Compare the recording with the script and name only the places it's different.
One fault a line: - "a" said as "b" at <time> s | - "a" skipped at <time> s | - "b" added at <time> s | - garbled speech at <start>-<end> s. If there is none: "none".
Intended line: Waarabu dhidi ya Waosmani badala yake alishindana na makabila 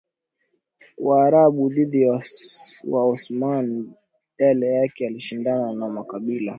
none